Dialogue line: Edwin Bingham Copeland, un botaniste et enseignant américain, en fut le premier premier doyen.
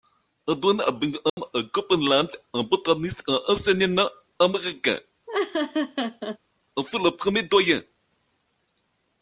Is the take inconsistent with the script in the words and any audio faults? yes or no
yes